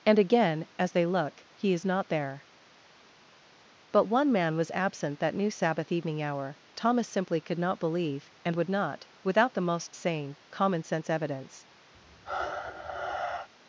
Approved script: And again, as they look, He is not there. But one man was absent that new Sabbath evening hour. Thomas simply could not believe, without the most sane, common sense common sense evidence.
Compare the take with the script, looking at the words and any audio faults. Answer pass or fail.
fail